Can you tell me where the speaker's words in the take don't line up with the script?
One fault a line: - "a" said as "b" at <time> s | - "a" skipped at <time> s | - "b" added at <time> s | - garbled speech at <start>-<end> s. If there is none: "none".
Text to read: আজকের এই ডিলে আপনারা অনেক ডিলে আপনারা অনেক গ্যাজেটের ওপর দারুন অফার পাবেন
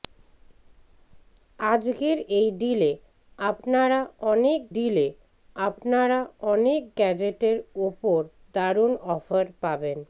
none